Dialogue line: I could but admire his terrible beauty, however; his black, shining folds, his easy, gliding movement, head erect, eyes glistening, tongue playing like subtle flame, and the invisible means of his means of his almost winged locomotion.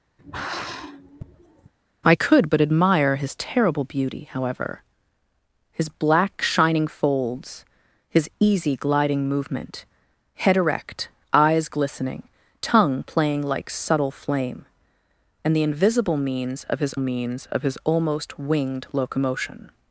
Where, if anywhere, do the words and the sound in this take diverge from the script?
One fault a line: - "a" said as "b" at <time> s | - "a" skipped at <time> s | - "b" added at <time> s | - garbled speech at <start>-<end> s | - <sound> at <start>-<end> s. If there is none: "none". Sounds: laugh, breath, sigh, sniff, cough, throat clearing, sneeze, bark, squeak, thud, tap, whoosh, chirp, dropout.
- sigh at 0.2-1.7 s